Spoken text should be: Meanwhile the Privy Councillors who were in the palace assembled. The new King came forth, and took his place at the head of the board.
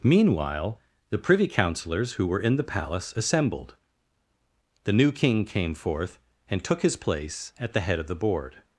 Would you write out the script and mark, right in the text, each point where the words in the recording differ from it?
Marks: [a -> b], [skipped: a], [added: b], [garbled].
Meanwhile the Privy Councillors who were in the palace assembled. The new King came forth, and took his place at the head of the board.